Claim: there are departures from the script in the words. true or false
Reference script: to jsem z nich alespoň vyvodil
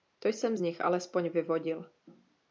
false